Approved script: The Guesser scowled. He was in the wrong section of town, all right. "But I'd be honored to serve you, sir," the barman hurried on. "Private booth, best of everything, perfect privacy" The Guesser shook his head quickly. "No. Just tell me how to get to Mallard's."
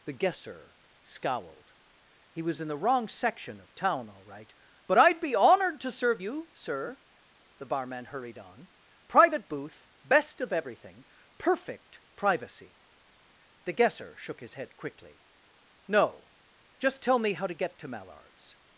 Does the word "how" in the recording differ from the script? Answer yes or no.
no